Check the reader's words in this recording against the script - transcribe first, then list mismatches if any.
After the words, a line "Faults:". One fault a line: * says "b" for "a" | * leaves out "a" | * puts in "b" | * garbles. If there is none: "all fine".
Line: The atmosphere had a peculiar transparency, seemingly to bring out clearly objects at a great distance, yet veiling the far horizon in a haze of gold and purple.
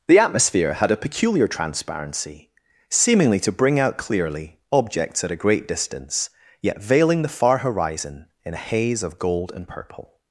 The atmosphere had a peculiar transparency, seemingly to bring out clearly objects at a great distance, yet veiling the far horizon in a haze of gold and purple.
Faults:
all fine